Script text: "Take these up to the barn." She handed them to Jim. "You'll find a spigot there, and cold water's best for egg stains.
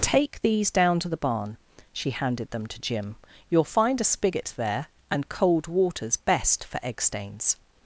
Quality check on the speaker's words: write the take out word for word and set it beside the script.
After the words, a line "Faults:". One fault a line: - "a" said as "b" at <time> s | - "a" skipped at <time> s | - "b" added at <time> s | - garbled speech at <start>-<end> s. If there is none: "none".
"Take these down to the barn." She handed them to Jim. "You'll find a spigot there, and cold water's best for egg stains.
Faults:
- "up" said as "down" at 0.7 s